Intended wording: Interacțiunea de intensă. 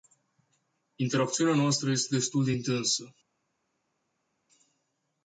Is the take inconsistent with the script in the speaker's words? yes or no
yes